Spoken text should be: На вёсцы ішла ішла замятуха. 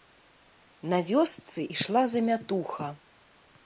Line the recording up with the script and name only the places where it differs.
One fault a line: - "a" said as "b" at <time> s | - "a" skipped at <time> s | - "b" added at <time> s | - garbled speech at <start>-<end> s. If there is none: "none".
- "ішла" skipped at 2.1 s